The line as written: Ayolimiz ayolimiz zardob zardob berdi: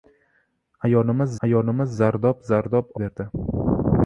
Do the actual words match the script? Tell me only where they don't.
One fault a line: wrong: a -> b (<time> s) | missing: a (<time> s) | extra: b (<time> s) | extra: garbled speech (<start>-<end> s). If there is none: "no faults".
no faults